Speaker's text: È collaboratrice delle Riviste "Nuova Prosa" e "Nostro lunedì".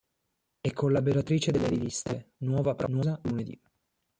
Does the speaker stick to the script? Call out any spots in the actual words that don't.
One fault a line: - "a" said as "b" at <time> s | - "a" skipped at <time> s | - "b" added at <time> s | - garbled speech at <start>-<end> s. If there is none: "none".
- "e Nostro" skipped at 3.2 s